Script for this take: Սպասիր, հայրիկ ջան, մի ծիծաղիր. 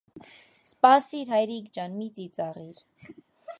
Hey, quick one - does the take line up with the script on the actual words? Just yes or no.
yes